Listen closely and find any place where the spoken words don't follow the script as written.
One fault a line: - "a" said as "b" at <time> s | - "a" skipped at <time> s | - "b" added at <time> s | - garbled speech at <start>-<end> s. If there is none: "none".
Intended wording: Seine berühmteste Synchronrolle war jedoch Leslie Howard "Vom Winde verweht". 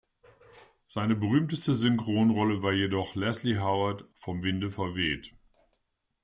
none